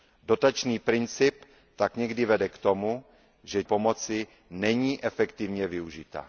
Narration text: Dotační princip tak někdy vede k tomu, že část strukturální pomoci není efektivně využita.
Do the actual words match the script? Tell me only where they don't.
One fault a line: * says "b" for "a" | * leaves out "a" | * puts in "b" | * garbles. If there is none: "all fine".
* leaves out "část strukturální"